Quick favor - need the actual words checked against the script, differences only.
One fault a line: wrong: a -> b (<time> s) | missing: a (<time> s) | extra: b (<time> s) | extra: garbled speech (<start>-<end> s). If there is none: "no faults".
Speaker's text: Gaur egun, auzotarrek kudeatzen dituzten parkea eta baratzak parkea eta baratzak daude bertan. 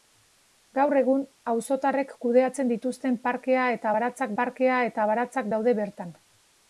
no faults